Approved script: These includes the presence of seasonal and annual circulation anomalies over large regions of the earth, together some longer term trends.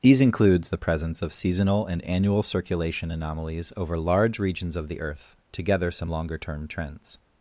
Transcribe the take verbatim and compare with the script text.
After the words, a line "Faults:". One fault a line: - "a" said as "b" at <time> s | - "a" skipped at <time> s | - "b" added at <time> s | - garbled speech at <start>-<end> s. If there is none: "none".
These includes the presence of seasonal and annual circulation anomalies over large regions of the earth, together some longer term trends.
Faults:
none